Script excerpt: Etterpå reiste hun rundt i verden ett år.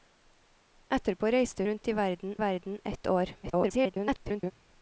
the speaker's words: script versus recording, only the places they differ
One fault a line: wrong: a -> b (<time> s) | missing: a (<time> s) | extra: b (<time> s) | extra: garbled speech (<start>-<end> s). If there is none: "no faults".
missing: hun (1.6 s)
extra: verden (2.4 s)
extra: garbled speech (3.4-4.5 s)